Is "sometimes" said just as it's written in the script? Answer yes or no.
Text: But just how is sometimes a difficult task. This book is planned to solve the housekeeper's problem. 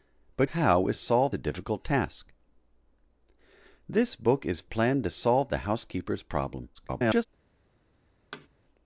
no